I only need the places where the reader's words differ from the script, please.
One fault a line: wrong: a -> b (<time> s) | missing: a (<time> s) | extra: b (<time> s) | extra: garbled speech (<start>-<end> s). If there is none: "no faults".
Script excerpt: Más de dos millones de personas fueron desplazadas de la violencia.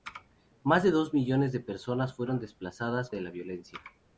no faults